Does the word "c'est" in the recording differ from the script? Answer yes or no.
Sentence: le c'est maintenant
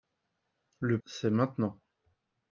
no